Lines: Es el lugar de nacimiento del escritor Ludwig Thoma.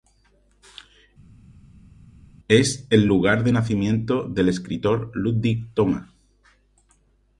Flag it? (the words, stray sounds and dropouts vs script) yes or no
no